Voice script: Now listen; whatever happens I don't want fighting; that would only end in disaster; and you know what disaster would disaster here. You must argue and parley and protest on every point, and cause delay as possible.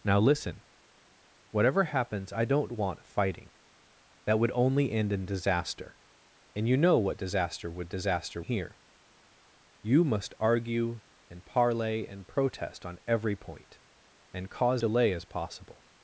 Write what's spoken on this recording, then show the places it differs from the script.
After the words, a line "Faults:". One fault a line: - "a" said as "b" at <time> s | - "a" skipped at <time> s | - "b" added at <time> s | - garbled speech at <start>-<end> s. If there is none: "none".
Now listen; whatever happens I don't want fighting; that would only end in disaster; and you know what disaster would disaster here. You must argue and parley and protest on every point, and cause delay as possible.
Faults:
none